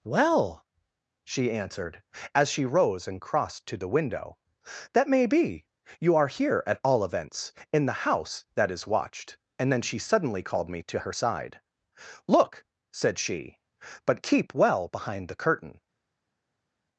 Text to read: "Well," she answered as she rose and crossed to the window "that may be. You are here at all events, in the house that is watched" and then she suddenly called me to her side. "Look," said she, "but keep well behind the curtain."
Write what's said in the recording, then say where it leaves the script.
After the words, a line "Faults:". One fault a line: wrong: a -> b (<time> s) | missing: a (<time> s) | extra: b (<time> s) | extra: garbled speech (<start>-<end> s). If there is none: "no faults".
"Well," she answered as she rose and crossed to the window "that may be. You are here at all events, in the house that is watched" and then she suddenly called me to her side. "Look," said she, "but keep well behind the curtain."
Faults:
no faults